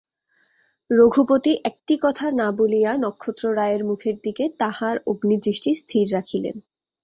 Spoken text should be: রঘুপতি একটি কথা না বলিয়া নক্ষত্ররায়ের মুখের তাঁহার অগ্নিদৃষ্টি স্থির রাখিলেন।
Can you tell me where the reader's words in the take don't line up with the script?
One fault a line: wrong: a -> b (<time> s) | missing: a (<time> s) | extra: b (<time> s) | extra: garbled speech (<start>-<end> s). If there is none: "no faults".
extra: দিকে (4.2 s)